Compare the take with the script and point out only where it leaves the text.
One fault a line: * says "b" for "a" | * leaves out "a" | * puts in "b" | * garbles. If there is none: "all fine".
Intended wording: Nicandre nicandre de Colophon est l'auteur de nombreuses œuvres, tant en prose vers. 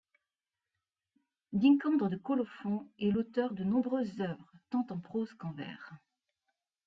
* leaves out "nicandre"
* puts in "qu'en"